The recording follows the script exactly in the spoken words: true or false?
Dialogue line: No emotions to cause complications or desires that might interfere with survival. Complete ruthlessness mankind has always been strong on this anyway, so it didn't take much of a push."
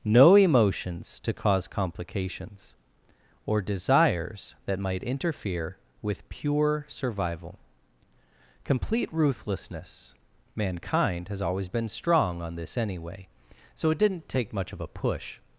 false